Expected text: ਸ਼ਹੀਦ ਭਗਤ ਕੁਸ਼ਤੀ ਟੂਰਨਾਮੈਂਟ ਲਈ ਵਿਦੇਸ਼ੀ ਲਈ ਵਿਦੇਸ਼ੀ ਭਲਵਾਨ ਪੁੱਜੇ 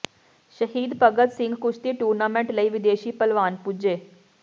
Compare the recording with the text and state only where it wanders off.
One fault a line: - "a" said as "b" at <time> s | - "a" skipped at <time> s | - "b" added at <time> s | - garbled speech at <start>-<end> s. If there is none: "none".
- "ਸਿੰਘ" added at 1.3 s
- "ਲਈ ਵਿਦੇਸ਼ੀ" skipped at 3.1 s